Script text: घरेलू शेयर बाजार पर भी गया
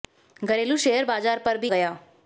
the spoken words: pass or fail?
pass